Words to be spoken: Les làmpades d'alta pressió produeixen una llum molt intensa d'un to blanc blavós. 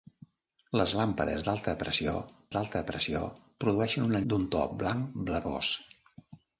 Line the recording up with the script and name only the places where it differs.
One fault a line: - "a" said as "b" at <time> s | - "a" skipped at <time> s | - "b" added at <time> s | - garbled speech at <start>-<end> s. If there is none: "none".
- "d'alta pressió" added at 2.6 s
- "llum molt intensa" skipped at 4.2 s